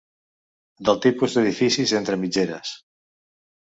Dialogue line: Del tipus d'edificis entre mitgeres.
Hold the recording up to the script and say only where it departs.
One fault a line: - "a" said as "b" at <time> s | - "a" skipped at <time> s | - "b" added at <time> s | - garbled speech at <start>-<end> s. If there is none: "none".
none